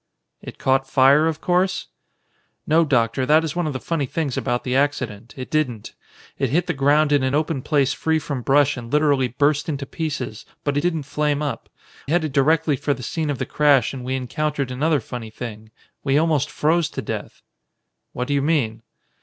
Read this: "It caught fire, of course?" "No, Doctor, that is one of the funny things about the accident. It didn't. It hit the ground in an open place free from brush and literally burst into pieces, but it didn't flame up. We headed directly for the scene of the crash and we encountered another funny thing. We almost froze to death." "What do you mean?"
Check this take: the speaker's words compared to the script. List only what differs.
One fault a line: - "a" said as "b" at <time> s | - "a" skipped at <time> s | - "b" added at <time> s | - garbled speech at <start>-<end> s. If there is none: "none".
- "it" skipped at 10.8 s
- "We" skipped at 11.7 s